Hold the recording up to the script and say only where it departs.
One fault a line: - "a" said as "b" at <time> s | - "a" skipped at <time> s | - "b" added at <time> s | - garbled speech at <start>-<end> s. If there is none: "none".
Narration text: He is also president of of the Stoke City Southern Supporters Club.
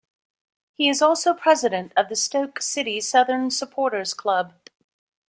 - "of" skipped at 2.1 s